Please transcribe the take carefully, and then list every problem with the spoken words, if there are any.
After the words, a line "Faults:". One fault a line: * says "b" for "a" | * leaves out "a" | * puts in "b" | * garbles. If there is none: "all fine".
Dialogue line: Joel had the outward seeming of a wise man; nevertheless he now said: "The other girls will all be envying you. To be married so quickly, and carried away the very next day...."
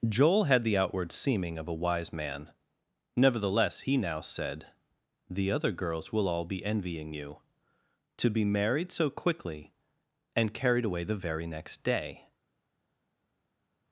Joel had the outward seeming of a wise man; nevertheless he now said: "The other girls will all be envying you. To be married so quickly, and carried away the very next day...."
Faults:
all fine